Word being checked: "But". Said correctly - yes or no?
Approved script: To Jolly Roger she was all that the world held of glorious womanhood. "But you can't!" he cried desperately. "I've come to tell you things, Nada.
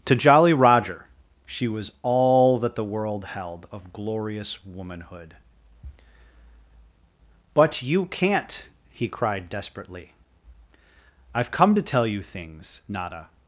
yes